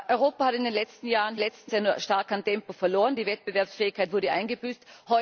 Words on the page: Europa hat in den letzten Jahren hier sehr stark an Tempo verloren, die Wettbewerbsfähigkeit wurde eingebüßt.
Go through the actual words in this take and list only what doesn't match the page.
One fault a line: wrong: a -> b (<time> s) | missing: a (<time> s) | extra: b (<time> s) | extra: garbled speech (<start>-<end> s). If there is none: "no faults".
wrong: hier -> letzten (1.4 s)